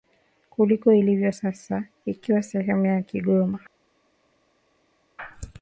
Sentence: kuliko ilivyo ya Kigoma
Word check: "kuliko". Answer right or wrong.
right